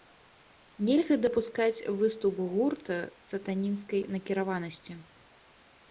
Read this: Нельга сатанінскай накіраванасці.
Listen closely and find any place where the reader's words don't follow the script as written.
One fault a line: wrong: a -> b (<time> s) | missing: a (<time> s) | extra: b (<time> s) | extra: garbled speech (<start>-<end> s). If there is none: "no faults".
extra: дапускаць выступ гурта (1.2 s)